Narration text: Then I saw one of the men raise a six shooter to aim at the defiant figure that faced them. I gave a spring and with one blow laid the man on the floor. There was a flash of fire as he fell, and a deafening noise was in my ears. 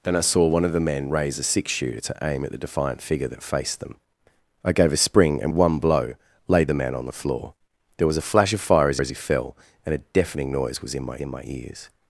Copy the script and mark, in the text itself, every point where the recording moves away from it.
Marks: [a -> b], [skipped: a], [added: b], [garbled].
Then I saw one of the men raise a six shooter to aim at the defiant figure that faced them. I gave a spring and [skipped: with] one blow laid the man on the floor. There was a flash of fire as [added: as] he fell, and a deafening noise was in my [added: in my] ears.